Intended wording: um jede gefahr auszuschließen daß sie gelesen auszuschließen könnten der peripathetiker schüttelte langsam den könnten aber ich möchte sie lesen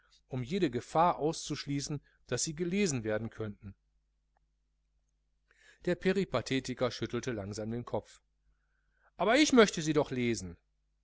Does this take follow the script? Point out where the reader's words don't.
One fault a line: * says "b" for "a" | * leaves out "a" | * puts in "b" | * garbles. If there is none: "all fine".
* says "werden" for "auszuschließen"
* says "kopf" for "könnten"
* puts in "doch"